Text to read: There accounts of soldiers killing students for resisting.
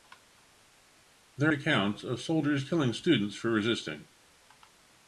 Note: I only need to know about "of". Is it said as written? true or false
true